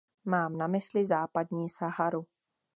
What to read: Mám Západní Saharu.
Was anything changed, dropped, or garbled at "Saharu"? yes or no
no